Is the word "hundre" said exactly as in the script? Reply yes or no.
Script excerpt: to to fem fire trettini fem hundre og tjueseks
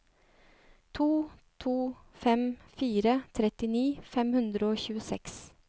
yes